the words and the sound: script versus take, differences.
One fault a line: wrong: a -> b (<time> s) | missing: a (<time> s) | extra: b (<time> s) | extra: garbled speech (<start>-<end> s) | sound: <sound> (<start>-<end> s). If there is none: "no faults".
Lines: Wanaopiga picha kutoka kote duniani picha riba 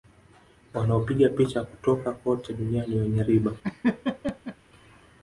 wrong: picha -> wenye (3.0 s)
sound: laugh (3.6-4.6 s)